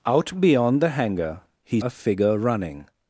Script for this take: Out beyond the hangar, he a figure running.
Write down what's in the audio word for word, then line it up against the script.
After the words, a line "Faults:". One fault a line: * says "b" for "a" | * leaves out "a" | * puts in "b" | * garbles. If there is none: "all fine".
Out beyond the hangar, he a figure running.
Faults:
all fine